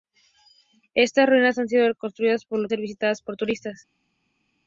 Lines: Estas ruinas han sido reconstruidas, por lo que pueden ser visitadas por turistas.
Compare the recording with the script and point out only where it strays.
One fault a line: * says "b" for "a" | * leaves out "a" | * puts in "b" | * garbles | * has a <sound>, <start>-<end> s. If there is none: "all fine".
* leaves out "que pueden"